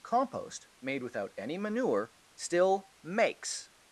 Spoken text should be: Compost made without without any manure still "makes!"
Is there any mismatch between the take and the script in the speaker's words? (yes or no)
yes